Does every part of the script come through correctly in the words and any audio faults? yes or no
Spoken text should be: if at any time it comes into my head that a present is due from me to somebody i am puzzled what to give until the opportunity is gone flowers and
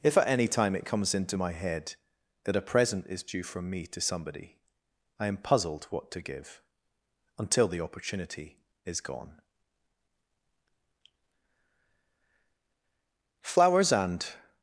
yes